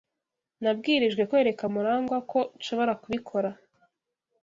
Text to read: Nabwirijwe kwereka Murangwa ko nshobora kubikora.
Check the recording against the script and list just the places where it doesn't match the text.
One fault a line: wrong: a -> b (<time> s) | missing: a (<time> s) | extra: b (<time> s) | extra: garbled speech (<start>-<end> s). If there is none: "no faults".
no faults